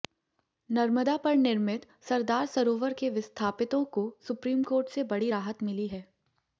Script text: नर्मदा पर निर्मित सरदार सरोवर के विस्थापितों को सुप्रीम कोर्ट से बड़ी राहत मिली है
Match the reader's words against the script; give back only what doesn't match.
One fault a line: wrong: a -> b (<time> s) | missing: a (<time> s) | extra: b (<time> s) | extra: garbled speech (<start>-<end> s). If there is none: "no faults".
no faults